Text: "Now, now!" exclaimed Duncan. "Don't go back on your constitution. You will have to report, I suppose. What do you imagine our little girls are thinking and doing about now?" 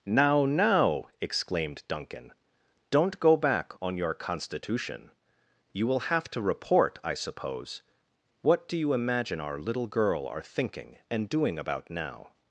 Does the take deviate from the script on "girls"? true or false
true